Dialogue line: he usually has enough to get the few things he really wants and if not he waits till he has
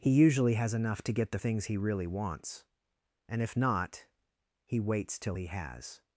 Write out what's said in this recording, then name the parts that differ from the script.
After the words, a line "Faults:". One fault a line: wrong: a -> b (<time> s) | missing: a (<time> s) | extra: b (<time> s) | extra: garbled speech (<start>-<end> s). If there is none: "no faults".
he usually has enough to get the things he really wants and if not he waits till he has
Faults:
missing: few (1.4 s)